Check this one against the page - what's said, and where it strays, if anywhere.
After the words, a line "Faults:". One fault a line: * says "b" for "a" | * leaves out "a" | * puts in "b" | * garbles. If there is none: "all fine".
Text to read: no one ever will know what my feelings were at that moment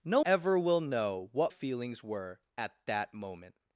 no ever will know what feelings were at that moment
Faults:
* leaves out "one"
* leaves out "my"